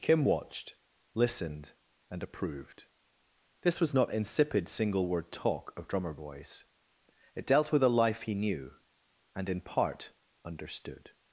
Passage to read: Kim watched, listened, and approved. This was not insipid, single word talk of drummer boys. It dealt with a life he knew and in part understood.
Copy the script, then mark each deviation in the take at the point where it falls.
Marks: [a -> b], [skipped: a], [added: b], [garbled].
Kim watched, listened, and approved. This was not insipid, single word talk of drummer boys. It dealt with a life he knew and in part understood.